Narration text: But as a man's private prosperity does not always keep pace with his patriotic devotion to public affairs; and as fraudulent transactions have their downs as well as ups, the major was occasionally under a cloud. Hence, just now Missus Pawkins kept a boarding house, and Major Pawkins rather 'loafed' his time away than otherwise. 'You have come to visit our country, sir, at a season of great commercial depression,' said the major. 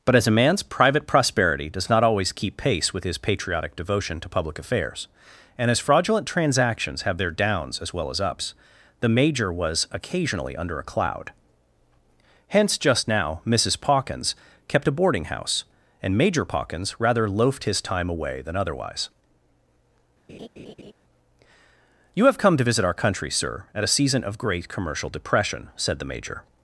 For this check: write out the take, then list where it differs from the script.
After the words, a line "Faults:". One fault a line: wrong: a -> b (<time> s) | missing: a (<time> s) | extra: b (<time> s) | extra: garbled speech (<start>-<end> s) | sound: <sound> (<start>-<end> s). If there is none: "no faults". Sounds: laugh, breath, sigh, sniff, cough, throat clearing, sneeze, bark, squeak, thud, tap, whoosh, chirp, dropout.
But as a man's private prosperity does not always keep pace with his patriotic devotion to public affairs; and as fraudulent transactions have their downs as well as ups, the major was occasionally under a cloud. Hence, just now Missus Pawkins kept a boarding house, and Major Pawkins rather 'loafed' his time away than otherwise. 'You have come to visit our country, sir, at a season of great commercial depression,' said the major.
Faults:
sound: laugh (20.3-20.9 s)